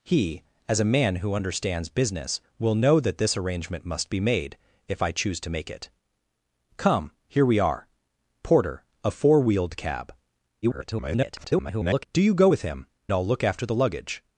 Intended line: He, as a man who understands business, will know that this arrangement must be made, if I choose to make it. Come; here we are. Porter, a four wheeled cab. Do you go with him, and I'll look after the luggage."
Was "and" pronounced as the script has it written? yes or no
no